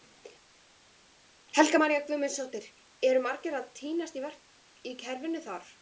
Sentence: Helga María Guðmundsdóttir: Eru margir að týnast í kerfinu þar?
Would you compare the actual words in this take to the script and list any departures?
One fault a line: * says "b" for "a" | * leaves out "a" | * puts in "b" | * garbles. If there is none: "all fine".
all fine